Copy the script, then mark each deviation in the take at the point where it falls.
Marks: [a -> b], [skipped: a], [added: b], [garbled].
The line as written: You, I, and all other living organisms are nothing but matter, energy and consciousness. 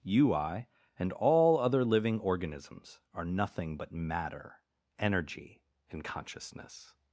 You, I, and all other living organisms are nothing but matter, energy and consciousness.